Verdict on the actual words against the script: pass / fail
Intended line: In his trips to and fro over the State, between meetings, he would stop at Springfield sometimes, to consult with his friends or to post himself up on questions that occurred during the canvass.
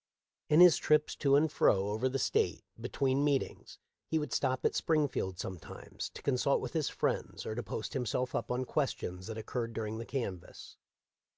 pass